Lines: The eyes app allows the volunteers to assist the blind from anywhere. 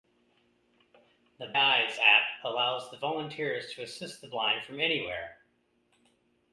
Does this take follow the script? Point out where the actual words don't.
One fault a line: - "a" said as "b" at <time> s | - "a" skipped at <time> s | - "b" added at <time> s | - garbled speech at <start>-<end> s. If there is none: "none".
none